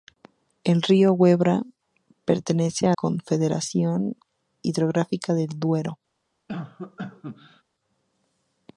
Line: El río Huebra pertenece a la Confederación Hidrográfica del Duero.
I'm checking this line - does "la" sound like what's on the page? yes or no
no